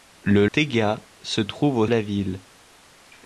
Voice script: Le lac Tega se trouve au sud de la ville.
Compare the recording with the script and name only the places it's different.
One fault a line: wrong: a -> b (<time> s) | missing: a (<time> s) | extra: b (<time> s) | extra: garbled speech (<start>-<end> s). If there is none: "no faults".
missing: lac (0.5 s)
missing: sud de (1.9 s)